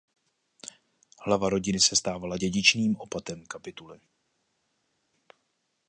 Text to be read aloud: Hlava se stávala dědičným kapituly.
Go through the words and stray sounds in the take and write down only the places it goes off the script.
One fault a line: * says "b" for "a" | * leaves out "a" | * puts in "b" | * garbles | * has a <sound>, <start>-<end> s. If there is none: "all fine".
* puts in "rodiny"
* puts in "opatem"